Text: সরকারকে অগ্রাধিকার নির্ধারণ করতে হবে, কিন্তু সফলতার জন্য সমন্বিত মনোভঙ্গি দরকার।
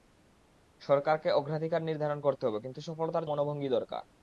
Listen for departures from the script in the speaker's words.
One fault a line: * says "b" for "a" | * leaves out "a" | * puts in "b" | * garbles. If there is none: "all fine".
* leaves out "জন্য সমন্বিত"